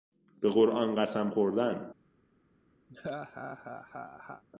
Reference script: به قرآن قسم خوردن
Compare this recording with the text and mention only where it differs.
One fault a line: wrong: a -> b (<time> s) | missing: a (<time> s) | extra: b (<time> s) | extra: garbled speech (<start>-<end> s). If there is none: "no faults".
no faults